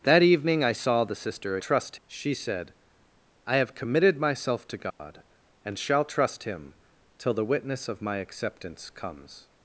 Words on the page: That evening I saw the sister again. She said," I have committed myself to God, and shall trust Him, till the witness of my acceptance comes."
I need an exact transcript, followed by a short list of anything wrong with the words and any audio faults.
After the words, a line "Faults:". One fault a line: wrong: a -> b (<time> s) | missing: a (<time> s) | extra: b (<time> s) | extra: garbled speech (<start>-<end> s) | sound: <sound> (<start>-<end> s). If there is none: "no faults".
That evening I saw the sister trust. She said," I have committed myself to God, and shall trust Him, till the witness of my acceptance comes."
Faults:
wrong: again -> trust (1.6 s)
sound: dropout (4.9-5.0 s)